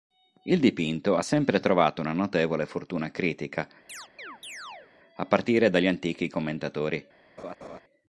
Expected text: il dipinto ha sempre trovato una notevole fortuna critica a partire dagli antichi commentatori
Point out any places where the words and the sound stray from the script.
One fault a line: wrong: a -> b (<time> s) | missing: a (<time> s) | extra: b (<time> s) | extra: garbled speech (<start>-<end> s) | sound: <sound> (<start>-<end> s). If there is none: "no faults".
sound: chirp (3.9-4.9 s)
sound: laugh (7.4-7.8 s)